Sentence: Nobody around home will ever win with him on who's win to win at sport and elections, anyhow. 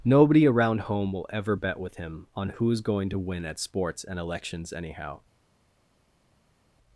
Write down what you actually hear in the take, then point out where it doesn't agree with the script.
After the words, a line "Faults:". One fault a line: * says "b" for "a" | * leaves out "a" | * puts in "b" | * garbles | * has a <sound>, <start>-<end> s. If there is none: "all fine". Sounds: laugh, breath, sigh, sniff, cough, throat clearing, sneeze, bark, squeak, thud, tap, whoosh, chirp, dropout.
Nobody around home will ever bet with him on who's going to win at sports and elections, anyhow.
Faults:
* says "bet" for "win"
* says "going" for "win"
* says "sports" for "sport"